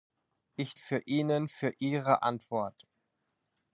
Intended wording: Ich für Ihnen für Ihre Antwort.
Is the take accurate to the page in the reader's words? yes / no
yes